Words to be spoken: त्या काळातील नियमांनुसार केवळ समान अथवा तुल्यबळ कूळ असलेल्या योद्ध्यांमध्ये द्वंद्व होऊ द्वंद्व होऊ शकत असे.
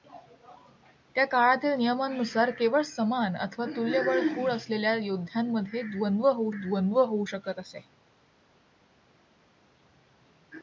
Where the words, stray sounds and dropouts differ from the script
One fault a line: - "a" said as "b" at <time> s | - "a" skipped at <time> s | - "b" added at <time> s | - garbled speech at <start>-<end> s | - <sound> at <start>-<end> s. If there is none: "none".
none